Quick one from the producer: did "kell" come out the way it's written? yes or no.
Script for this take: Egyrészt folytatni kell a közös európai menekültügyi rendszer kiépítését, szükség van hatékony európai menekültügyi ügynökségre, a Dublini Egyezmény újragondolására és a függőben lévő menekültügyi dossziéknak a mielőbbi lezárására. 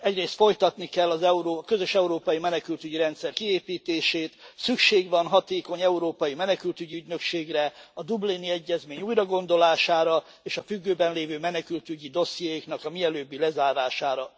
yes